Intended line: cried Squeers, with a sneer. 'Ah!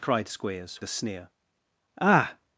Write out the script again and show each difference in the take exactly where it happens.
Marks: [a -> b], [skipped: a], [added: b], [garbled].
cried Squeers, [skipped: with] a sneer. 'Ah!